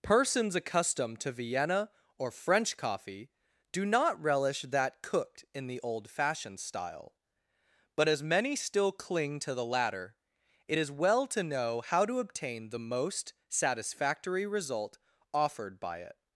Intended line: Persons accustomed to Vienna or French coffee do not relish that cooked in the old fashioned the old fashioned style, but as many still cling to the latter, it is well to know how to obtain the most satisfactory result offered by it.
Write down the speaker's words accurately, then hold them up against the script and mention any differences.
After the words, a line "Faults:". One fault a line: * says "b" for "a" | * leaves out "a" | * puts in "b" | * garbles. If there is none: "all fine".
Persons accustomed to Vienna or French coffee do not relish that cooked in the old fashioned style, but as many still cling to the latter, it is well to know how to obtain the most satisfactory result offered by it.
Faults:
* leaves out "the old fashioned"